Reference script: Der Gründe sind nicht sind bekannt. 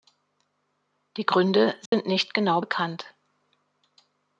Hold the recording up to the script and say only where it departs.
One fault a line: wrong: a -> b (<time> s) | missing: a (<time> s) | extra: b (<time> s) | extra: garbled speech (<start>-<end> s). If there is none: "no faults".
wrong: Der -> Die (1.2 s)
wrong: sind -> genau (2.3 s)